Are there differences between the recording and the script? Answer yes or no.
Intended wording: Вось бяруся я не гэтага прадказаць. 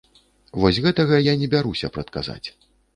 yes